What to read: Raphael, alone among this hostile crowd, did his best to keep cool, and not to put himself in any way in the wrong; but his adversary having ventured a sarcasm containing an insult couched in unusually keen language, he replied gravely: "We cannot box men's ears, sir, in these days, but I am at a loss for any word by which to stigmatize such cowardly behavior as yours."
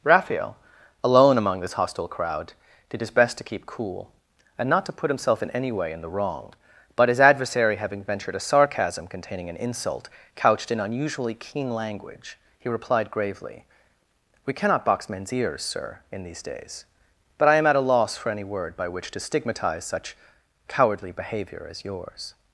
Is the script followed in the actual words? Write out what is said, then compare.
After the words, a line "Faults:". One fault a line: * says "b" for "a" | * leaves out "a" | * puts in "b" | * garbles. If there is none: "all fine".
Raphael, alone among this hostile crowd, did his best to keep cool, and not to put himself in any way in the wrong; but his adversary having ventured a sarcasm containing an insult couched in unusually keen language, he replied gravely: "We cannot box men's ears, sir, in these days, but I am at a loss for any word by which to stigmatize such cowardly behavior as yours."
Faults:
all fine